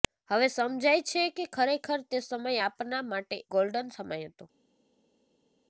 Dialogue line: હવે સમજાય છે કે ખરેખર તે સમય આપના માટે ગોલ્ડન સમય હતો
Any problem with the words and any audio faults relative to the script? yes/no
no